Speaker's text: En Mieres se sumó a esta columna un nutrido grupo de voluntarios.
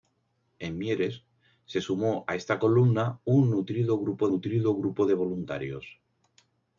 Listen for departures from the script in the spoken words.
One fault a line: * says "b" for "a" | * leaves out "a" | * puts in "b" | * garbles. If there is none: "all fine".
* puts in "nutrido grupo"